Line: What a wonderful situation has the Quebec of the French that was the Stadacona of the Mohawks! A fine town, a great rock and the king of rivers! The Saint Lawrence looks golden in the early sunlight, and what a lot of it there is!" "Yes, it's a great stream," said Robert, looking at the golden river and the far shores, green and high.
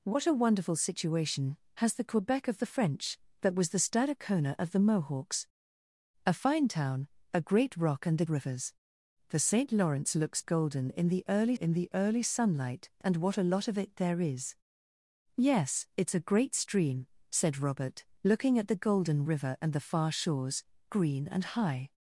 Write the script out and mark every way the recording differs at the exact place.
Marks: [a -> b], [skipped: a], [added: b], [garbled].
What a wonderful situation has the Quebec of the French that was the Stadacona of the Mohawks! A fine town, a great rock and the [skipped: king of] rivers! The Saint Lawrence looks golden in the early [added: in the early] sunlight, and what a lot of it there is!" "Yes, it's a great stream," said Robert, looking at the golden river and the far shores, green and high.